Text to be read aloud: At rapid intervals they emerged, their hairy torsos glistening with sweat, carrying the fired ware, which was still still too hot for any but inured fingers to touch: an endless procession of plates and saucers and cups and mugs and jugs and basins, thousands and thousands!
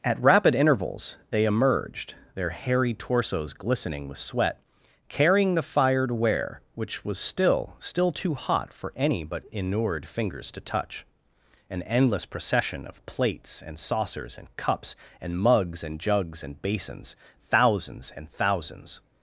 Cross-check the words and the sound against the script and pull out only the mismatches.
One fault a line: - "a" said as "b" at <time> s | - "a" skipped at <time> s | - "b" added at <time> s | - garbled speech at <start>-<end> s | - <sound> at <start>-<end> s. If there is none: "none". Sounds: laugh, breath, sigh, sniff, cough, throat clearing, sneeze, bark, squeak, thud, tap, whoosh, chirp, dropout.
none